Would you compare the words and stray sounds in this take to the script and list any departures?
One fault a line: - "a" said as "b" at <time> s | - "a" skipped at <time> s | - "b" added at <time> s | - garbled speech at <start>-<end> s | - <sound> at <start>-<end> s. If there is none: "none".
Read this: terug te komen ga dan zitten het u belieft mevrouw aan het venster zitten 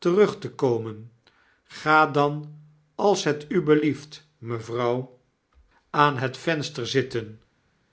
- "zitten" said as "als" at 3.0 s